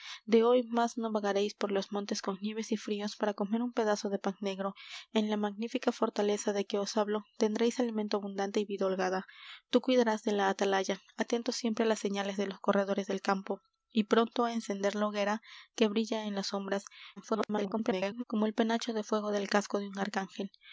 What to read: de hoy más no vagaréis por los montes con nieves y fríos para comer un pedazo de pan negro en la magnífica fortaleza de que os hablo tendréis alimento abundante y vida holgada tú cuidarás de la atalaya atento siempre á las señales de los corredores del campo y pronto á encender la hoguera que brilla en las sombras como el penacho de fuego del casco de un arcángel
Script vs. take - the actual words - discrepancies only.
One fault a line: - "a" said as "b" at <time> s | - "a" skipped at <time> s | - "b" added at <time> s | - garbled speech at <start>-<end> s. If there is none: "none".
- garbled speech at 17.2-18.2 s